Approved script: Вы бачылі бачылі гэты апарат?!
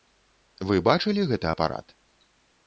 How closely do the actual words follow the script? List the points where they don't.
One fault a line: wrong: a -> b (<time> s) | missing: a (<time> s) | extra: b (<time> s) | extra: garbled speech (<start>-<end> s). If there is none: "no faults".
missing: бачылі (1.3 s)